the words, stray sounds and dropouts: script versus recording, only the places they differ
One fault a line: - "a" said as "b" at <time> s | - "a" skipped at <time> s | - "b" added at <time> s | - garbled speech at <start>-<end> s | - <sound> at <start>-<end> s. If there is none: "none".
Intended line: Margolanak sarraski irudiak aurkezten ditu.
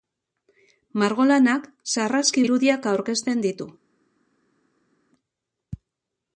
none